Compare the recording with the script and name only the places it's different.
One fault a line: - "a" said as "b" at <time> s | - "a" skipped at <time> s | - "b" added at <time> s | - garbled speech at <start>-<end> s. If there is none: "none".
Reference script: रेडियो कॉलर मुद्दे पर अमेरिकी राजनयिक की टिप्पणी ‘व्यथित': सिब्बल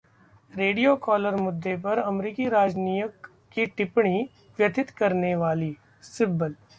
- "करने वाली" added at 5.0 s